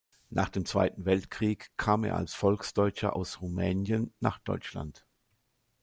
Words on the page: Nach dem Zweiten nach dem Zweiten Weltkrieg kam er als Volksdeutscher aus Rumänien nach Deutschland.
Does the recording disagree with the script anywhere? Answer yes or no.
yes